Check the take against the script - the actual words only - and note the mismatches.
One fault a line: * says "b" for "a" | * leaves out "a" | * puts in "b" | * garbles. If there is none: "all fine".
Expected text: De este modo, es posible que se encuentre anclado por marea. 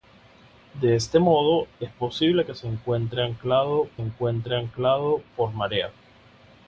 * puts in "encuentre anclado"